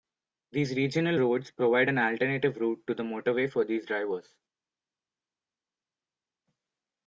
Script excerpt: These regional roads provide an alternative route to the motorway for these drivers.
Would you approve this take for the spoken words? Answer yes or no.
yes